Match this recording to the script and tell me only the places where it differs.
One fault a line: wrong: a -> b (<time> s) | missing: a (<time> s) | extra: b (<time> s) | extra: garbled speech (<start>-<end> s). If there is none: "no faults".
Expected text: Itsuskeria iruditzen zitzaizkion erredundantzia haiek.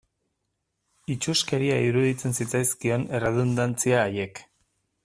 no faults